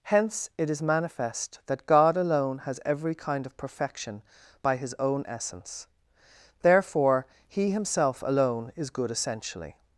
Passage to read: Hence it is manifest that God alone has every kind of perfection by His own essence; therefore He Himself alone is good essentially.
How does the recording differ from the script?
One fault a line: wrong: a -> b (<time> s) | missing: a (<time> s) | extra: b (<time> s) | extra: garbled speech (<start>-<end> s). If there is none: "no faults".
no faults